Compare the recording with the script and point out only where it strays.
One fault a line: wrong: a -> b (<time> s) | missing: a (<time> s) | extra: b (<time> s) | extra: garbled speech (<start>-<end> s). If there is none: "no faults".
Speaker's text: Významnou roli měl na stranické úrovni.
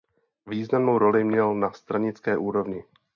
no faults